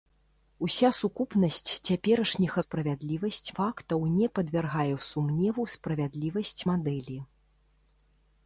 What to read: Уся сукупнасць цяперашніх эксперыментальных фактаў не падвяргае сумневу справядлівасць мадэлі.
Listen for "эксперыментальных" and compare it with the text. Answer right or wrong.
wrong